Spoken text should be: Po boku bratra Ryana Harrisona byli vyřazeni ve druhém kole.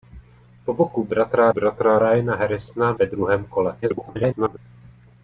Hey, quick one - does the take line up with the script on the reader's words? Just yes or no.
no